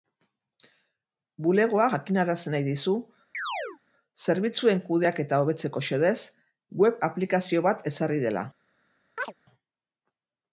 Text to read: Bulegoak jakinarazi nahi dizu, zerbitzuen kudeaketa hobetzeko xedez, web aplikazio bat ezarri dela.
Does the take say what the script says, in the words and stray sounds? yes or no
no